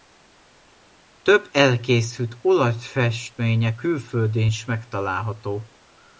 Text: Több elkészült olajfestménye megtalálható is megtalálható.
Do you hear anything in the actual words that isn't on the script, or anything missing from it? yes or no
yes